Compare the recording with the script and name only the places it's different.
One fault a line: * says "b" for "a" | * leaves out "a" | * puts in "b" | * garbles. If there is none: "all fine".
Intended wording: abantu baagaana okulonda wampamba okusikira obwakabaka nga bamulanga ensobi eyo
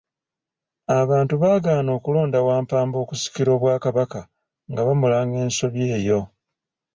all fine